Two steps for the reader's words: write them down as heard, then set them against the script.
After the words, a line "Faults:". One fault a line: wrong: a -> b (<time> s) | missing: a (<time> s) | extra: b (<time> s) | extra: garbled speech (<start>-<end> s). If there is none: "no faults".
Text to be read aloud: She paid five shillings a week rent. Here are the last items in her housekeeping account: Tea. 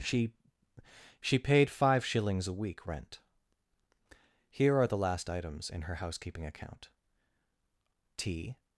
She she paid five shillings a week rent. Here are the last items in her housekeeping account: Tea.
Faults:
extra: she (1.2 s)